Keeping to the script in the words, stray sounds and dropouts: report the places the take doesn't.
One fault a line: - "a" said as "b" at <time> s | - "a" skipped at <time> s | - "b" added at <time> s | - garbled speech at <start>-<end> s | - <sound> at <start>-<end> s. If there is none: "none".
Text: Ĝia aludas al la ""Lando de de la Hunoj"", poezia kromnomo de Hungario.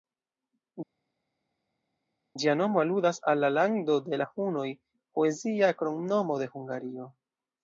- "nomo" added at 2.6 s
- "de" skipped at 4.2 s